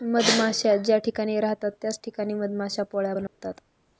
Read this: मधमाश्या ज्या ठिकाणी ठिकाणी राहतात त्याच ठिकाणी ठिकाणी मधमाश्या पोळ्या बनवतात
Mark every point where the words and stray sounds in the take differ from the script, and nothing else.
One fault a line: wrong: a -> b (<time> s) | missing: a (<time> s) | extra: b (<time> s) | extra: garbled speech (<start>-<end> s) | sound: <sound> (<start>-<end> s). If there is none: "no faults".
missing: ठिकाणी (1.4 s)
missing: ठिकाणी (2.3 s)
sound: dropout (3.3-3.4 s)